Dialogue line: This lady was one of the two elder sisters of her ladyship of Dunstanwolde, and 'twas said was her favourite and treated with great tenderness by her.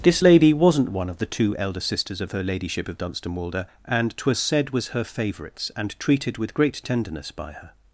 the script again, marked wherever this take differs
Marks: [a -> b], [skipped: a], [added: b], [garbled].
This lady [was -> wasn't] one of the two elder sisters of her ladyship of Dunstanwolde, and 'twas said was her [favourite -> favourites] and treated with great tenderness by her.